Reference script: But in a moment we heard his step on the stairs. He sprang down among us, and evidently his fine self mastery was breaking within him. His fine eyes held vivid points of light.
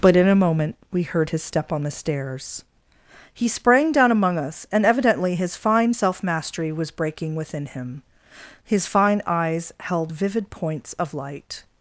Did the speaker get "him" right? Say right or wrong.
right